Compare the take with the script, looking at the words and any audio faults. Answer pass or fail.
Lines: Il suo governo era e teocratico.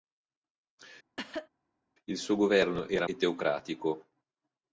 fail